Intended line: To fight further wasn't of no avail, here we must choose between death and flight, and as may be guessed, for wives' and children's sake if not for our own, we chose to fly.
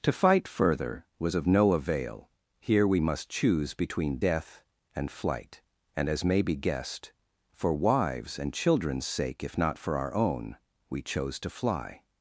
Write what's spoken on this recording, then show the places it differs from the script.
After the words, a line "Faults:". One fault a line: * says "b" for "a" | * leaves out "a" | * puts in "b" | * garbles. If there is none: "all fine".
To fight further was of no avail, here we must choose between death and flight, and as may be guessed, for wives' and children's sake if not for our own, we chose to fly.
Faults:
* says "was" for "wasn't"